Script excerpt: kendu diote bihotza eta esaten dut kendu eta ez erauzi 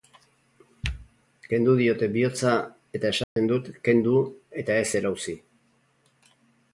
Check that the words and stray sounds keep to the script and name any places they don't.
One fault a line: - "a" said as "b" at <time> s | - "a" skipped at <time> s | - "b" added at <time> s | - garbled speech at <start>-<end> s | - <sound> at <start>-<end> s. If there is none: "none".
- dropout at 3.2-3.4 s